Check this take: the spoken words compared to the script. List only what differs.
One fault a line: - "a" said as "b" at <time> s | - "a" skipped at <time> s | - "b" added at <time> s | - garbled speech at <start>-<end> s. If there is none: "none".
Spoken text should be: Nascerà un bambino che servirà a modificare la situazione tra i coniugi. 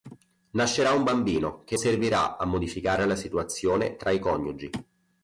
none